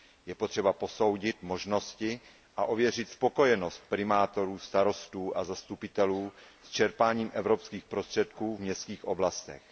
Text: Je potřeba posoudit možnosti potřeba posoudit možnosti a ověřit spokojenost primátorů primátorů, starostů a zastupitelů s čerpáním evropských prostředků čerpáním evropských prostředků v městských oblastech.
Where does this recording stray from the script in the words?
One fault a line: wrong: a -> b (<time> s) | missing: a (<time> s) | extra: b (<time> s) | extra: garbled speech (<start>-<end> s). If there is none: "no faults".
missing: potřeba posoudit možnosti (2.2 s)
missing: primátorů (4.6 s)
missing: čerpáním evropských prostředků (8.6 s)